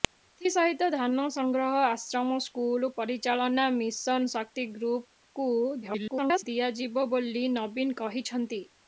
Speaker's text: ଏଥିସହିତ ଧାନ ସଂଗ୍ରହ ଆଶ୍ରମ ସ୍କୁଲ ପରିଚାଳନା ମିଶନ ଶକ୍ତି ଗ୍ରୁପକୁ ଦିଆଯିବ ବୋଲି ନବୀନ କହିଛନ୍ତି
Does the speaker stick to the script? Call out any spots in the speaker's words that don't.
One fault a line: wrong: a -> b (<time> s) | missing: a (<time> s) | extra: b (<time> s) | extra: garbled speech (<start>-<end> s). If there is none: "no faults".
extra: garbled speech (5.8-6.4 s)